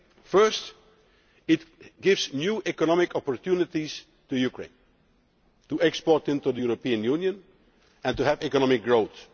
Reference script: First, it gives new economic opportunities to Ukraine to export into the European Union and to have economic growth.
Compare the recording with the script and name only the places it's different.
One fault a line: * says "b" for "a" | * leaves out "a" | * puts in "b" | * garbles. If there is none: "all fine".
all fine